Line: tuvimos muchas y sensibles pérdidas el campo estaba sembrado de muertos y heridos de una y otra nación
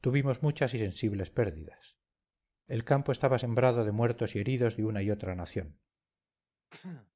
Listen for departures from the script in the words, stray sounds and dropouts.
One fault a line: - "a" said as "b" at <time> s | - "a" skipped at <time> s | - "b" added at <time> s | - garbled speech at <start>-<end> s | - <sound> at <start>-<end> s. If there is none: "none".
- sneeze at 6.7-7.1 s